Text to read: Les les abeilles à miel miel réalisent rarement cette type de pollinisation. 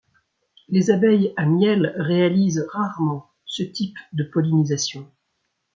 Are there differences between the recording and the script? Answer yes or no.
yes